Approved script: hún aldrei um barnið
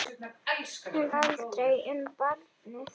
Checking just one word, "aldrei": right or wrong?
right